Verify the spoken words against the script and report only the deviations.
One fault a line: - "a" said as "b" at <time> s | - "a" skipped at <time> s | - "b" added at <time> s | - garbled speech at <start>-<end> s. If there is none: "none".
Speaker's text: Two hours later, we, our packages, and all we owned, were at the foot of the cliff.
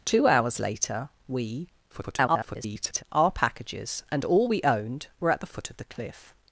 - garbled speech at 1.9-3.0 s